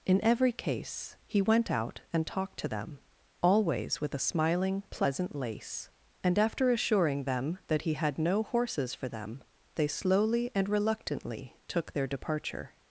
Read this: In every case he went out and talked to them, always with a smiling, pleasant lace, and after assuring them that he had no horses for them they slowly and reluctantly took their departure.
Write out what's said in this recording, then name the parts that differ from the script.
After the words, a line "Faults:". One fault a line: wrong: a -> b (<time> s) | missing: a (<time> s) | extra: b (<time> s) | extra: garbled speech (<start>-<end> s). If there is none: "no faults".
In every case he went out and talked to them, always with a smiling, pleasant lace, and after assuring them that he had no horses for them they slowly and reluctantly took their departure.
Faults:
no faults